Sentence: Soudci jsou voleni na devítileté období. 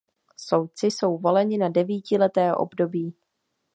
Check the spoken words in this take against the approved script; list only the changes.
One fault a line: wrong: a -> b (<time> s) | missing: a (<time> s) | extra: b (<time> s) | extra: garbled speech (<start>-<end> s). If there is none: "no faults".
no faults